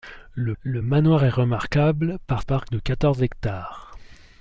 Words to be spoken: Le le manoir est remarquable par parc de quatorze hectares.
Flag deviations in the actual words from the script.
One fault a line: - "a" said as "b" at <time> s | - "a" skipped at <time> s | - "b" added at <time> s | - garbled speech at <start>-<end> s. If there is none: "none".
none